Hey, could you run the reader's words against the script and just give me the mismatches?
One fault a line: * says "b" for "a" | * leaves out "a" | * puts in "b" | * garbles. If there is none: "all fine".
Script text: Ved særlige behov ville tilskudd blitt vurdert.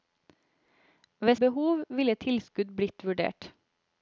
* leaves out "særlige"